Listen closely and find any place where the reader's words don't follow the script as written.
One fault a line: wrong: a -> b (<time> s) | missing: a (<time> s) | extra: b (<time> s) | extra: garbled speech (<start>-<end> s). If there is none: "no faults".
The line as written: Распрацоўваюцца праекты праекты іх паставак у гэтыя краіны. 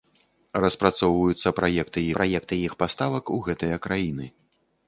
no faults